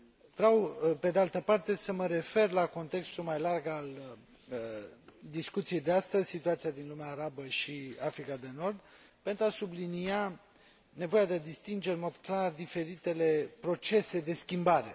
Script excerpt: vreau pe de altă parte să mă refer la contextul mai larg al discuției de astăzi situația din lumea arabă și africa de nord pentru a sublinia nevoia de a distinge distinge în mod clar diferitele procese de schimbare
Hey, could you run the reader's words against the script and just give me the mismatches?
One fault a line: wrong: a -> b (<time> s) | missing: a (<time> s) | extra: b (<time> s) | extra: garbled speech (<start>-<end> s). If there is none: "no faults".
missing: distinge (11.9 s)